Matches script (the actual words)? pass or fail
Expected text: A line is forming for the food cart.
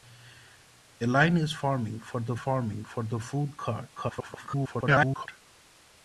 fail